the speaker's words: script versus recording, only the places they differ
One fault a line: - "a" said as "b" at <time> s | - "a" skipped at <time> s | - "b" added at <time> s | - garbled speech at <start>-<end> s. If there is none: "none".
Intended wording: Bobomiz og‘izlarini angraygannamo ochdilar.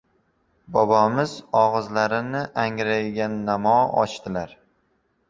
none